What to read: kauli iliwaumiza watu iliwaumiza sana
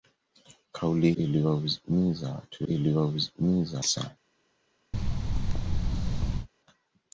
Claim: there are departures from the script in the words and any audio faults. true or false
true